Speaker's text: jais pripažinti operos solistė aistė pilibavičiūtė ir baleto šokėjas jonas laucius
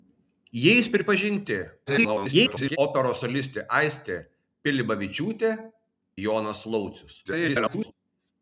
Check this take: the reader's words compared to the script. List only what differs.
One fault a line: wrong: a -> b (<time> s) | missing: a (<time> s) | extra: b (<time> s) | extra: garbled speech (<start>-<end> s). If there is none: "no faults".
extra: garbled speech (1.9-2.8 s)
missing: ir baleto šokėjas (5.5 s)
extra: garbled speech (7.2-7.9 s)